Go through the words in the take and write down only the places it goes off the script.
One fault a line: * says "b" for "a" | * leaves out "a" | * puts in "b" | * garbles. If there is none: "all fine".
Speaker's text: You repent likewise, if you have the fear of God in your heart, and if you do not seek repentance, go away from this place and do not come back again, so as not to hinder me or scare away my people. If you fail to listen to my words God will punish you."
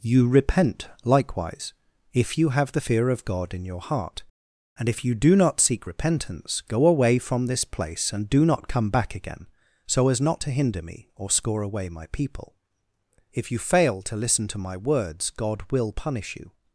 * says "score" for "scare"